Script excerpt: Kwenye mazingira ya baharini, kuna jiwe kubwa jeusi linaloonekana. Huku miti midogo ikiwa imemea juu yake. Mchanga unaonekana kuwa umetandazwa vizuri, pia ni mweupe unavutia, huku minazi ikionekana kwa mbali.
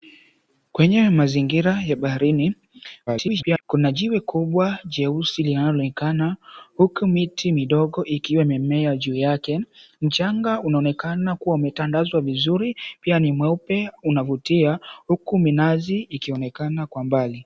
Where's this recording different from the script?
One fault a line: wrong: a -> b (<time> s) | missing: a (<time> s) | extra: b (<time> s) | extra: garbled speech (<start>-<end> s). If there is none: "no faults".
extra: garbled speech (3.1-3.6 s)